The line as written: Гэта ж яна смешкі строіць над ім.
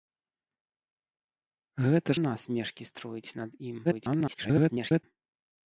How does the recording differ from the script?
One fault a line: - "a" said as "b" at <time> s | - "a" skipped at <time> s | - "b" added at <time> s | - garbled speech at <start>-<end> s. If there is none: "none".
- "ж" skipped at 2.1 s
- garbled speech at 3.8-5.0 s